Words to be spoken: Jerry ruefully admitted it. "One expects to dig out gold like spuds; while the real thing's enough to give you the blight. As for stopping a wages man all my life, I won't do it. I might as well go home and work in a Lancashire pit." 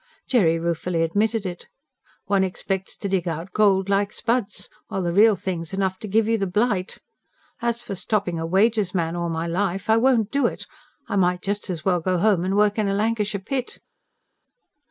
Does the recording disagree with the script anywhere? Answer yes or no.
yes